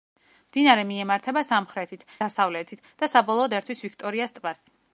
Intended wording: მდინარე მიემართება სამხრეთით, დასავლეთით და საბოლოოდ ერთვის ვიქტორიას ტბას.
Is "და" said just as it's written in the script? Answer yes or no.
yes